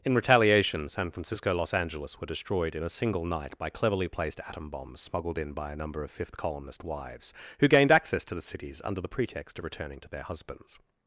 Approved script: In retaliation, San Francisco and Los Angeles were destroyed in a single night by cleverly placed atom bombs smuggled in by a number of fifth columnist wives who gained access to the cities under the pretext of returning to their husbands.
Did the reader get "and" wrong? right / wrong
wrong